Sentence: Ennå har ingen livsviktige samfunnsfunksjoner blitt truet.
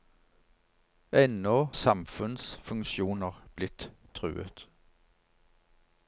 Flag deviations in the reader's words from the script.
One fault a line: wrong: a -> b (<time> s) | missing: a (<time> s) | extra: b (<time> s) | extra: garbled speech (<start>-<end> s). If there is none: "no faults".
missing: har ingen livsviktige (1.7 s)